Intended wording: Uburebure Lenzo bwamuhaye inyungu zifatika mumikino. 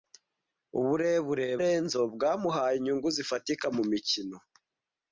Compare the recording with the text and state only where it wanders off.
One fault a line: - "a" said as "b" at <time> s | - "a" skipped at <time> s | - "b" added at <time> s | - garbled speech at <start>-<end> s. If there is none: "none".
none